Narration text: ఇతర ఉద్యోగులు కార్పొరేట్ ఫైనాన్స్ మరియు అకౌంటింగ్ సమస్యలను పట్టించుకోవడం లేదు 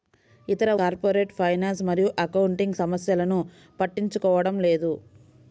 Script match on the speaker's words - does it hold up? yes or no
no